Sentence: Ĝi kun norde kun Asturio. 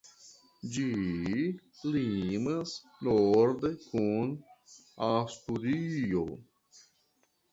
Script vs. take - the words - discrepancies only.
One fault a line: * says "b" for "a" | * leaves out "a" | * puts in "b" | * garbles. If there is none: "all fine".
* says "limas" for "kun"